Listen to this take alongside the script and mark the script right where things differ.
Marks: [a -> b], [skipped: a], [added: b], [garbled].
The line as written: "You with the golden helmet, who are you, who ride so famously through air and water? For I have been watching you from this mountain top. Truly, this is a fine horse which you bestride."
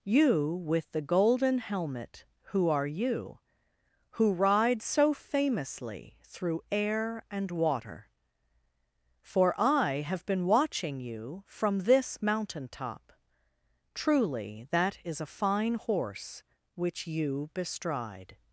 "You with the golden helmet, who are you, who ride so famously through air and water? For I have been watching you from this mountain top. Truly, [this -> that] is a fine horse which you bestride."